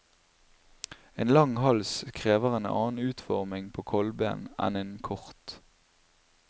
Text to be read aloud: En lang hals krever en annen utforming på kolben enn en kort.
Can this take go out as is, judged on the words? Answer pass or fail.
pass